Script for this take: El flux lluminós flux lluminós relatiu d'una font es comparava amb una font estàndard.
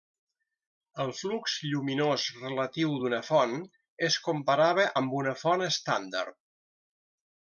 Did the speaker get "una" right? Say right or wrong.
right